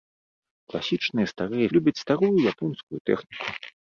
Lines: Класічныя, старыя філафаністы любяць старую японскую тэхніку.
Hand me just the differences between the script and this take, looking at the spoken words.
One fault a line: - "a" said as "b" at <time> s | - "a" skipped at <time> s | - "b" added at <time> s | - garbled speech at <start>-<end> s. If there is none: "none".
- "філафаністы" skipped at 1.7 s